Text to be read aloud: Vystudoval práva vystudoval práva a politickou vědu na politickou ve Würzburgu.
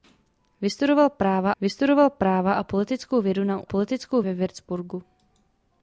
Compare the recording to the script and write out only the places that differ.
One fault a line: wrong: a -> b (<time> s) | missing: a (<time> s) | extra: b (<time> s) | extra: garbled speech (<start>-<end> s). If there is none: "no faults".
no faults